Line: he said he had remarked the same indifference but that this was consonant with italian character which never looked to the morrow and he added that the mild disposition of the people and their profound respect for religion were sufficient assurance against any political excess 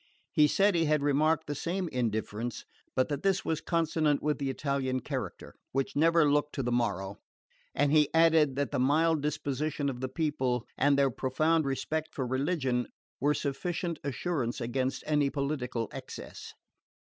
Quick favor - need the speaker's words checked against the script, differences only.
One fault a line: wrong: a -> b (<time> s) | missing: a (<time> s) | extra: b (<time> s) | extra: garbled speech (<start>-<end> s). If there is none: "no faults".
extra: the (4.4 s)